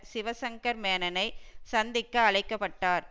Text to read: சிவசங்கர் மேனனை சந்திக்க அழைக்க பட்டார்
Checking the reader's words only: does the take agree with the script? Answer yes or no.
yes